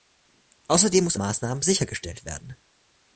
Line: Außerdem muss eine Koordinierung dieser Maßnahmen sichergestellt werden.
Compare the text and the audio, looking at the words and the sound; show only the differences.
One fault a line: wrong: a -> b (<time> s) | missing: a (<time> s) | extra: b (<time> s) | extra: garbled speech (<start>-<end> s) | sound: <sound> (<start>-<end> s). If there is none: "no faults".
missing: eine Koordinierung dieser (1.1 s)